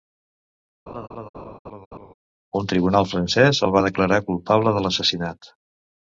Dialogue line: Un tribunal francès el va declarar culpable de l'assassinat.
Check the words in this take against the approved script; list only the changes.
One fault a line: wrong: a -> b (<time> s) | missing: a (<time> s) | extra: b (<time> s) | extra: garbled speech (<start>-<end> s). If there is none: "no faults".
no faults